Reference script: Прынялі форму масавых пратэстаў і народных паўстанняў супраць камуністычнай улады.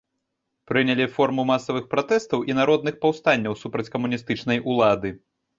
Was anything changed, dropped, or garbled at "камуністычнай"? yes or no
no